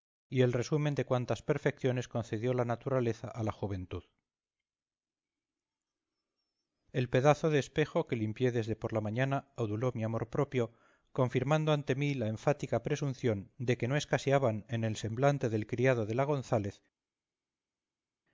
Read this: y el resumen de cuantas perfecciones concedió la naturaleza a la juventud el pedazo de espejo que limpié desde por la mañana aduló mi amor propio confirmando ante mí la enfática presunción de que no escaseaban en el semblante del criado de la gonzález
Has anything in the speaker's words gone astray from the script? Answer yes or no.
no